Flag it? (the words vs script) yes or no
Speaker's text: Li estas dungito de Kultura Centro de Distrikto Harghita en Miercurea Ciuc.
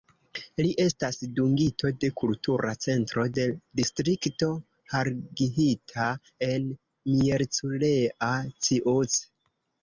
no